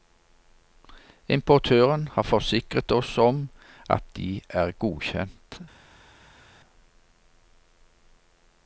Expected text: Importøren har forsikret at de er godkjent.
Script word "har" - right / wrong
right